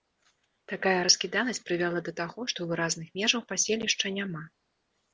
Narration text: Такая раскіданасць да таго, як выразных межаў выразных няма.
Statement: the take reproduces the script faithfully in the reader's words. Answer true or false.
false